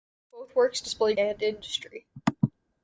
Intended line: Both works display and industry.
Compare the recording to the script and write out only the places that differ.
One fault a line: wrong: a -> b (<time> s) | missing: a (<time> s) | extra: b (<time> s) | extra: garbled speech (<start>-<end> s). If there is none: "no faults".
no faults